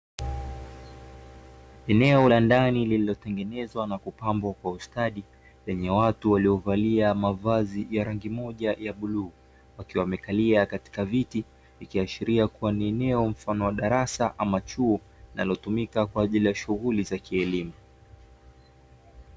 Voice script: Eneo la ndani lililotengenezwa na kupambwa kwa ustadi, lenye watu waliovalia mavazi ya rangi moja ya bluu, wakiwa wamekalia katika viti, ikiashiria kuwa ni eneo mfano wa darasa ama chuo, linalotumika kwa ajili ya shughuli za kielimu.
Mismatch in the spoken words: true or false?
false